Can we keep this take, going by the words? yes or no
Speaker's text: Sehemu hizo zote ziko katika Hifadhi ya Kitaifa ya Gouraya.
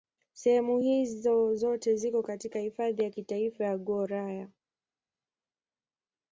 yes